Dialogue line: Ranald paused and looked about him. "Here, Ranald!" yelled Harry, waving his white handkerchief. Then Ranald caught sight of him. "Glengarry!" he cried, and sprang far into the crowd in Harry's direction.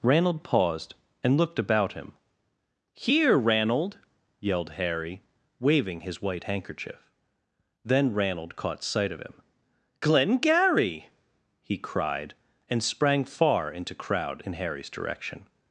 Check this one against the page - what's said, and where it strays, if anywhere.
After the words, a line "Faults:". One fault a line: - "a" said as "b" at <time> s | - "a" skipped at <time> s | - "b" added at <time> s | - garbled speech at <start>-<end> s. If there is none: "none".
Ranald paused and looked about him. "Here, Ranald!" yelled Harry, waving his white handkerchief. Then Ranald caught sight of him. "Glengarry!" he cried, and sprang far into crowd in Harry's direction.
Faults:
- "the" skipped at 13.9 s